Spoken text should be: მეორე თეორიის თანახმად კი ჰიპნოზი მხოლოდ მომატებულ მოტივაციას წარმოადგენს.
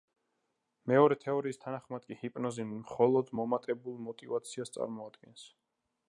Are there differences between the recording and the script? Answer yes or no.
no